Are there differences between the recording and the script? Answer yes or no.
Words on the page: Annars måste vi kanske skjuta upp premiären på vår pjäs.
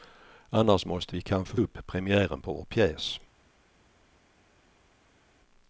yes